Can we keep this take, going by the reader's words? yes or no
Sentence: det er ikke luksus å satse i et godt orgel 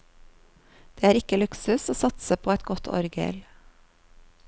no